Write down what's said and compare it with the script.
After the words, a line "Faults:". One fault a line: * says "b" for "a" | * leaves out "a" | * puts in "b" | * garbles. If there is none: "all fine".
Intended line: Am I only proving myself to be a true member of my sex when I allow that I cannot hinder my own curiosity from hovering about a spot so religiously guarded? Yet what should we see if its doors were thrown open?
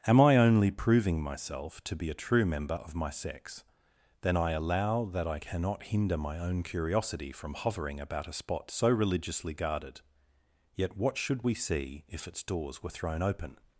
Am I only proving myself to be a true member of my sex then I allow that I cannot hinder my own curiosity from hovering about a spot so religiously guarded? Yet what should we see if its doors were thrown open?
Faults:
* says "then" for "when"